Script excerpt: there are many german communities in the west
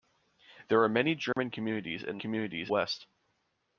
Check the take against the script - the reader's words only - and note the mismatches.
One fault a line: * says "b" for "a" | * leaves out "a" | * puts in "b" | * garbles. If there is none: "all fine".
* says "communities" for "the"